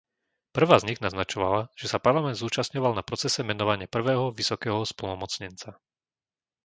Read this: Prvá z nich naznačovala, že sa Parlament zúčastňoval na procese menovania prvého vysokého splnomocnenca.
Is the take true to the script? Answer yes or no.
yes